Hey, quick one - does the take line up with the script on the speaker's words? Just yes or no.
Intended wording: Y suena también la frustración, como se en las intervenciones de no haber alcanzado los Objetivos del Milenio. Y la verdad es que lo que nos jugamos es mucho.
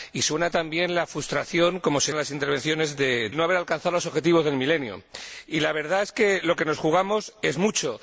yes